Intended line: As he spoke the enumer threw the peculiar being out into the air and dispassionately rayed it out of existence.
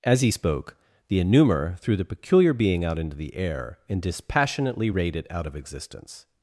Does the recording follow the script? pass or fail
pass